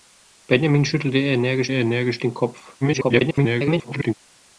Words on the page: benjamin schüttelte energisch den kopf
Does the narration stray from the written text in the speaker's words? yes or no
yes